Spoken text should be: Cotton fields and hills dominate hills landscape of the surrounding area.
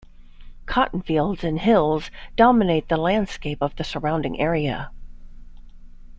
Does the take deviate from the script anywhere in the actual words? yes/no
yes